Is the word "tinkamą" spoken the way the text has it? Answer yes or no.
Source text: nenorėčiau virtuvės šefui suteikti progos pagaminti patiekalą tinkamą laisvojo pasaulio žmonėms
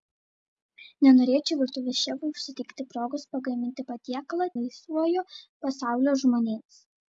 no